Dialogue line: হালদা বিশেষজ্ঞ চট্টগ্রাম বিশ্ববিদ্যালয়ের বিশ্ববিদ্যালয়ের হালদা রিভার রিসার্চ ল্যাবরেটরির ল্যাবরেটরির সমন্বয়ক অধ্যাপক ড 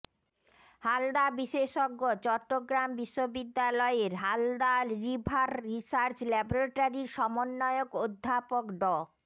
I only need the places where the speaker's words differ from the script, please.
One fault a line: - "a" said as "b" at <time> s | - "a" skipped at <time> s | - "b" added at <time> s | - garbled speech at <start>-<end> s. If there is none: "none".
- "বিশ্ববিদ্যালয়ের" skipped at 4.1 s
- "ল্যাবরেটরির" skipped at 7.1 s